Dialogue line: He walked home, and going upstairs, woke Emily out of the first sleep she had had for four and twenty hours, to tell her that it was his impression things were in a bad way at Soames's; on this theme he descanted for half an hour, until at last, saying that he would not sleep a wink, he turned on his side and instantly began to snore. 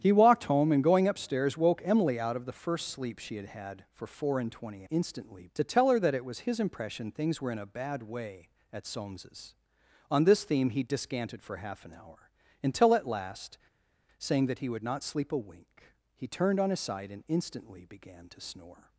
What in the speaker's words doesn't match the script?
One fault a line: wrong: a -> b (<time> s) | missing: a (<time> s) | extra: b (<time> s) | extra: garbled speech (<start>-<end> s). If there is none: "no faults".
wrong: hours -> instantly (4.9 s)